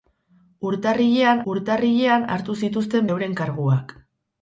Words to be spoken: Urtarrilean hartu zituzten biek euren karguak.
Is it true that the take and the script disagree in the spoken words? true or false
true